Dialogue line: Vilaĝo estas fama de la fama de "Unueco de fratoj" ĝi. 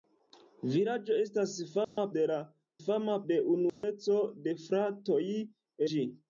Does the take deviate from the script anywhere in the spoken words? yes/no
no